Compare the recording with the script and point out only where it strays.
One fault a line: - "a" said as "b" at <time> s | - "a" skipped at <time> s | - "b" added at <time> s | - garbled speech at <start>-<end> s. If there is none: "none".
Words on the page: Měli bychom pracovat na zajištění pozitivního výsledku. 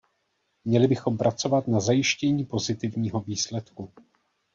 none